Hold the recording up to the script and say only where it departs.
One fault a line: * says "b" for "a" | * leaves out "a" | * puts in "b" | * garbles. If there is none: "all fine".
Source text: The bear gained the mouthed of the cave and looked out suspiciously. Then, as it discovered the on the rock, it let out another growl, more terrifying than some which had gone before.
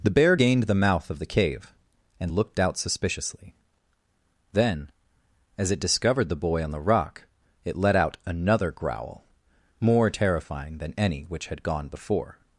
* says "mouth" for "mouthed"
* puts in "boy"
* says "any" for "some"